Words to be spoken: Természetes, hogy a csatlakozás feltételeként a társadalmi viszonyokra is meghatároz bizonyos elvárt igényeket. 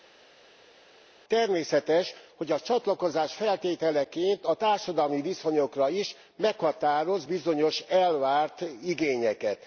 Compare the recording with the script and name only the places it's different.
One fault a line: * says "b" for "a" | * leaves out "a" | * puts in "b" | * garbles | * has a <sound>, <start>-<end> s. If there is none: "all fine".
all fine